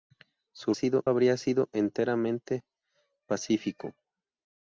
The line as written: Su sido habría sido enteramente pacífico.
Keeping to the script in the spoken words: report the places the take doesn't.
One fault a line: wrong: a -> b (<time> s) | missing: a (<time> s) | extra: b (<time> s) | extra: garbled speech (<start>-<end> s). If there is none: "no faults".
no faults